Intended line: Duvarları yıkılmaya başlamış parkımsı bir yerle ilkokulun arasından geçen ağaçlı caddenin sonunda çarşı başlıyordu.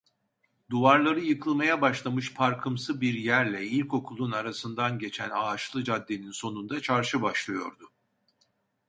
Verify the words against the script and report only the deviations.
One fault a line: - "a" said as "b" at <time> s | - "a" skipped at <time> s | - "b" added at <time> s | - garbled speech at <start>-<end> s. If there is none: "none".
none